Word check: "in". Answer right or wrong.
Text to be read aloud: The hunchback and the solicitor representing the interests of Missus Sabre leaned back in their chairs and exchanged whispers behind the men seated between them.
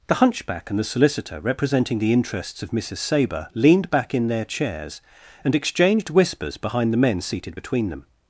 right